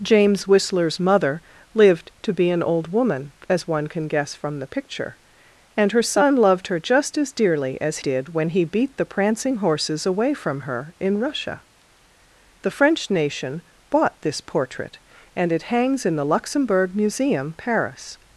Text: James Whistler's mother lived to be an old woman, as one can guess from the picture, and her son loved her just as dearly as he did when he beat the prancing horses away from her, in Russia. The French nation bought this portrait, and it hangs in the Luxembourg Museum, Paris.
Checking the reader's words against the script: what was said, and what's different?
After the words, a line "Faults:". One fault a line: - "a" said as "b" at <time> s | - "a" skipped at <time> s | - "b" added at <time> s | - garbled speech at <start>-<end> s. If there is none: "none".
James Whistler's mother lived to be an old woman, as one can guess from the picture, and her son loved her just as dearly as did when he beat the prancing horses away from her, in Russia. The French nation bought this portrait, and it hangs in the Luxembourg Museum, Paris.
Faults:
- "he" skipped at 8.0 s